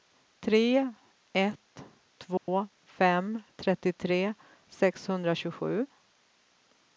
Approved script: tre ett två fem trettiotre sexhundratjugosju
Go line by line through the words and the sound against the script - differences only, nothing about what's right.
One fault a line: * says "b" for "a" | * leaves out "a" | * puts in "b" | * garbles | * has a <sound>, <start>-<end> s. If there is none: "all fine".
* has a dropout, 2.4-2.5 s